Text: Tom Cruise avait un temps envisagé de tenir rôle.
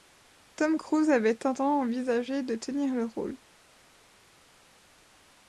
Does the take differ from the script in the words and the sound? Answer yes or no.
yes